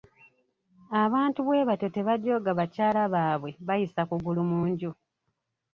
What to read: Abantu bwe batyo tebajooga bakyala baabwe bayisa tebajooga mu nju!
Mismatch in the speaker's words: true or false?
true